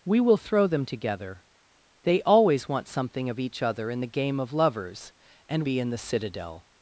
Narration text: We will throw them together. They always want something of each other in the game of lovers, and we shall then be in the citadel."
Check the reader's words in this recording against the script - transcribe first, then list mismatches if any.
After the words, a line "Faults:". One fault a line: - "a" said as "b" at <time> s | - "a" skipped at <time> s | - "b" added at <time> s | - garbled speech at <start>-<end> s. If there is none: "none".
We will throw them together. They always want something of each other in the game of lovers, and be in the citadel."
Faults:
- "we shall then" skipped at 5.7 s